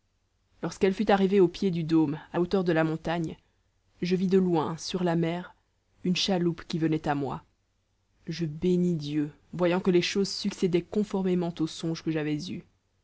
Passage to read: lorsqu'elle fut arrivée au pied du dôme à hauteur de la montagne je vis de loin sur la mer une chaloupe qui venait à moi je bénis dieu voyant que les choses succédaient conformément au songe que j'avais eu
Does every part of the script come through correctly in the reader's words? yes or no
yes